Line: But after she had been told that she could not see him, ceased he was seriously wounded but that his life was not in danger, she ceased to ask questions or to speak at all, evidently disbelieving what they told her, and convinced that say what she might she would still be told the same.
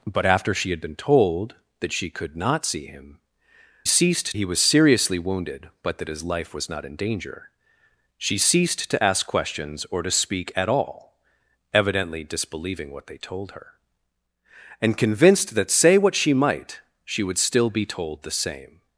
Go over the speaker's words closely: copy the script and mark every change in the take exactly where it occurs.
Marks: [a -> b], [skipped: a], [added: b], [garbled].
But after she had been told that she could not see him, ceased he was seriously wounded but that his life was not in danger, she ceased to ask questions or to speak at all, evidently disbelieving what they told her, and convinced that say what she might she would still be told the same.